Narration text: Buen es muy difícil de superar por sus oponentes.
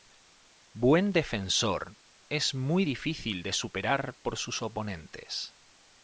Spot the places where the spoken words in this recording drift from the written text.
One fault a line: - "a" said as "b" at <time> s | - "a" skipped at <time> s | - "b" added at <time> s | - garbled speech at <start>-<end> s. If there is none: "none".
- "defensor" added at 1.1 s